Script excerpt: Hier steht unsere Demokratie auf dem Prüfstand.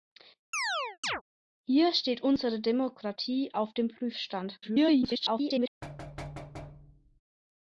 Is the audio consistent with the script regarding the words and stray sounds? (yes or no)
no